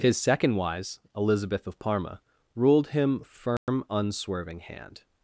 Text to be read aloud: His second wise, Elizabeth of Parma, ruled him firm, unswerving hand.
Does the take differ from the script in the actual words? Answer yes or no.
no